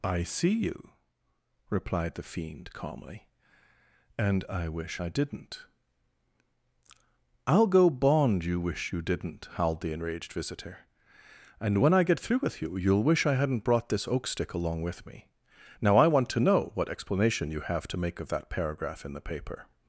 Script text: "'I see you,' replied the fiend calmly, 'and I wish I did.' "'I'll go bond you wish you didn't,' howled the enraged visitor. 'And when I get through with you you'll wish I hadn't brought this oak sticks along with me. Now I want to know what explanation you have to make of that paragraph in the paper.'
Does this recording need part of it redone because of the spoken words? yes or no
yes